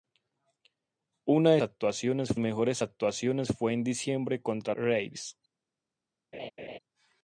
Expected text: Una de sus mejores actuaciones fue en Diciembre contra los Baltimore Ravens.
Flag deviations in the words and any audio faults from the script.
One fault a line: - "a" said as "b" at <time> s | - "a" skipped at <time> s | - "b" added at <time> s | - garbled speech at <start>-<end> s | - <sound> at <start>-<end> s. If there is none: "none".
- "sus" said as "actuaciones" at 1.6 s
- "los Baltimore" skipped at 4.8 s
- laugh at 6.3-6.8 s